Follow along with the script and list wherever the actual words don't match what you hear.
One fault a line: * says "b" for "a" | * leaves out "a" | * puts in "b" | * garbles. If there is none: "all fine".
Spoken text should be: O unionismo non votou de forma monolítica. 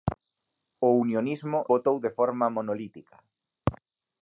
* leaves out "non"